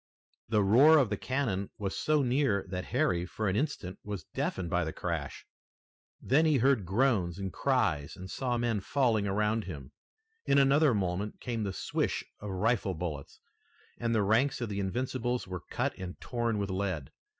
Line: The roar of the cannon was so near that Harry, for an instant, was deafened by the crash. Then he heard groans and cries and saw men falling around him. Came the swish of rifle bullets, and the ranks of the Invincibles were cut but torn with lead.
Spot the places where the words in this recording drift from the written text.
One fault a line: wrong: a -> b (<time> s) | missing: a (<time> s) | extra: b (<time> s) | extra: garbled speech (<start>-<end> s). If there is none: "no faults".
extra: In another moment (10.5 s)
wrong: but -> and (16.0 s)